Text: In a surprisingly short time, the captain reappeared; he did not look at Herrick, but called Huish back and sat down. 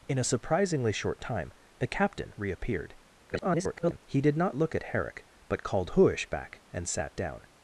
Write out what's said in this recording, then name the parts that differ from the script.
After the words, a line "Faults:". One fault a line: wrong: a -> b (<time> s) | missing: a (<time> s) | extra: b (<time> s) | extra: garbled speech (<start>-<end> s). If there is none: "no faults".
In a surprisingly short time, the captain reappeared; [garbled] he did not look at Herrick, but called Huish back and sat down.
Faults:
extra: garbled speech (3.3-4.0 s)